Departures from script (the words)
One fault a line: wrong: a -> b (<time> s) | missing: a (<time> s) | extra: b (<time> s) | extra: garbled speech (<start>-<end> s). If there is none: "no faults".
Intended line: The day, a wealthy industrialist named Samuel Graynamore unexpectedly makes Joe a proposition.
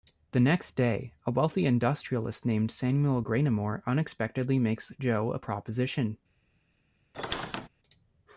extra: next (0.4 s)